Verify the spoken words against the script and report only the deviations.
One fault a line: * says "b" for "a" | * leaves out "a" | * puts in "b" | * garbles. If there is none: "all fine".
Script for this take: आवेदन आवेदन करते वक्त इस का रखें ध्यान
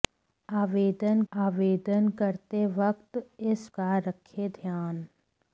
all fine